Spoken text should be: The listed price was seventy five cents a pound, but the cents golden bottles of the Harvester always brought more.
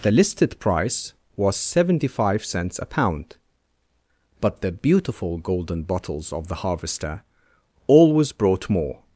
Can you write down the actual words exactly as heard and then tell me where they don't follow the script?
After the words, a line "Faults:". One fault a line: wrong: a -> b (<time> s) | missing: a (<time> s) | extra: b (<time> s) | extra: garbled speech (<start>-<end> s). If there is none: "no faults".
The listed price was seventy five cents a pound, but the beautiful golden bottles of the Harvester always brought more.
Faults:
wrong: cents -> beautiful (4.7 s)